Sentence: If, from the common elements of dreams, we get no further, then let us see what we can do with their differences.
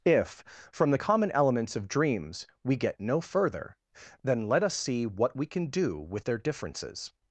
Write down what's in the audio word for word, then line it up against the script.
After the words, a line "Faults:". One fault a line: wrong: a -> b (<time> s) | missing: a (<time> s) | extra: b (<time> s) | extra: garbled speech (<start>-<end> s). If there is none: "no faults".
If, from the common elements of dreams, we get no further, then let us see what we can do with their differences.
Faults:
no faults